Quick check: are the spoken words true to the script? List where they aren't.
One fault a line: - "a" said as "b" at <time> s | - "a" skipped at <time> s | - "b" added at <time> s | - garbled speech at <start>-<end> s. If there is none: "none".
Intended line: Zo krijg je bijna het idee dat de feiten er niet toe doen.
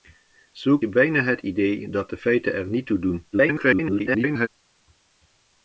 - "krijg" skipped at 0.8 s
- garbled speech at 3.3-4.5 s